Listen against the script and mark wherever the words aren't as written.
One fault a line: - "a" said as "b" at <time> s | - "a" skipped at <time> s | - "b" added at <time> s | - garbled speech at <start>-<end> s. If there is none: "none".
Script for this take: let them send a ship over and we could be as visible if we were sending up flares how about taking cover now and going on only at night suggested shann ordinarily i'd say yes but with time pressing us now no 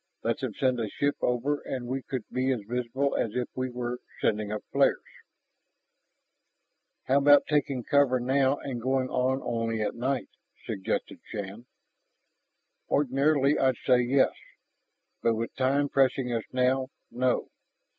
- "as" added at 3.1 s